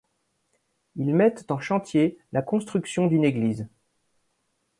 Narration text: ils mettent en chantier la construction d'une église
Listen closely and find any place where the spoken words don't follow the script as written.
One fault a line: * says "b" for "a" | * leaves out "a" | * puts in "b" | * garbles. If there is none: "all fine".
all fine